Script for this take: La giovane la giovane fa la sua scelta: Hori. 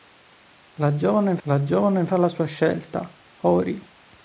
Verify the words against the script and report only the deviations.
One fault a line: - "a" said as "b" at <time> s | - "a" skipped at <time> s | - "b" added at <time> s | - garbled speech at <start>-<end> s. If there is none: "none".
none